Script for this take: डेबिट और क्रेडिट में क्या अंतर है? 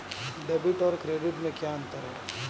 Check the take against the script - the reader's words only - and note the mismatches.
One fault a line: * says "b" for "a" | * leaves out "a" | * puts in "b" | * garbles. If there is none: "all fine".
all fine